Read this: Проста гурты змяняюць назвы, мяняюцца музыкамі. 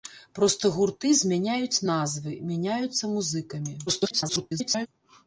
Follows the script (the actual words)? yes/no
no